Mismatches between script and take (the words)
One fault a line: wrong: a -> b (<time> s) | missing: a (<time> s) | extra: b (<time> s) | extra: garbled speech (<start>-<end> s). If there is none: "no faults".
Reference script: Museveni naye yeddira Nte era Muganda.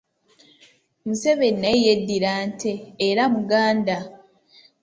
no faults